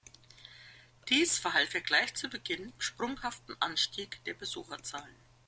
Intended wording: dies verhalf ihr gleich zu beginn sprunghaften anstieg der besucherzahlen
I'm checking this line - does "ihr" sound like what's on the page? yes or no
yes